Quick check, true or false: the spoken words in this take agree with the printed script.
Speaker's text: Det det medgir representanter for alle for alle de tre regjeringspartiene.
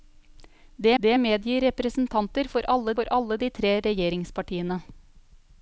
true